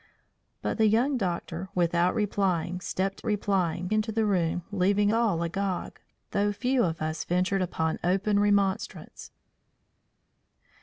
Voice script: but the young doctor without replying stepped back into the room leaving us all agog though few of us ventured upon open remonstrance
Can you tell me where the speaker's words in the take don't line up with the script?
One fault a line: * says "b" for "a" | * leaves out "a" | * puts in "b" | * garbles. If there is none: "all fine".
* says "replying" for "back"
* leaves out "us"